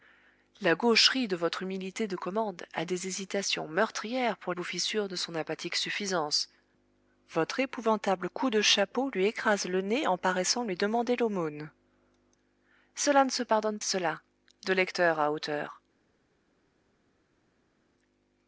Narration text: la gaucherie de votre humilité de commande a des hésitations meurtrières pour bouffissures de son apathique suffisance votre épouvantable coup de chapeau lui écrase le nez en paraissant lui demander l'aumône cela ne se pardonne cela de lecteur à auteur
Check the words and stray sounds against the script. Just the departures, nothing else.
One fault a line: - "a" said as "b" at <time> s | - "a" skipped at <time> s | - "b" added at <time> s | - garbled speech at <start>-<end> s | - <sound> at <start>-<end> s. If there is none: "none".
none